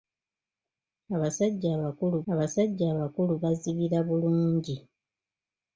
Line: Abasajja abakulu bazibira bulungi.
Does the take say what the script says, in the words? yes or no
no